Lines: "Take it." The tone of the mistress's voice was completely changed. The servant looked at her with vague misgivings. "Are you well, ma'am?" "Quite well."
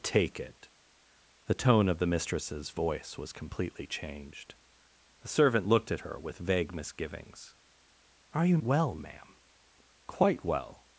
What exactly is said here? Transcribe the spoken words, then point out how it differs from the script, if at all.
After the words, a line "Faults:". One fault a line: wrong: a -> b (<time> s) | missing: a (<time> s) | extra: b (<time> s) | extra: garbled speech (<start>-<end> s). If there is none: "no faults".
"Take it." The tone of the mistress's voice was completely changed. The servant looked at her with vague misgivings. "Are you well, ma'am?" "Quite well."
Faults:
no faults